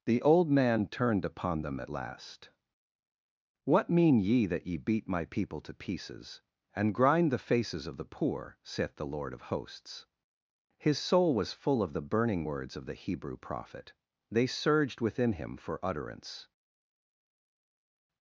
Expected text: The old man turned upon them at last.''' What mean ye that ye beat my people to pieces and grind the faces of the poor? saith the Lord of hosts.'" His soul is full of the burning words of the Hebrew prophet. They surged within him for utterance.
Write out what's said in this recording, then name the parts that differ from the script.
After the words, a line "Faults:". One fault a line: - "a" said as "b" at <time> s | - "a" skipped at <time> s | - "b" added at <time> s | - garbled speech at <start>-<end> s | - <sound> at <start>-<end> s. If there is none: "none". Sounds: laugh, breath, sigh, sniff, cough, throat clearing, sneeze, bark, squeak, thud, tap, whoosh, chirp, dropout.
The old man turned upon them at last.''' What mean ye that ye beat my people to pieces and grind the faces of the poor? saith the Lord of hosts.'" His soul was full of the burning words of the Hebrew prophet. They surged within him for utterance.
Faults:
- "is" said as "was" at 11.3 s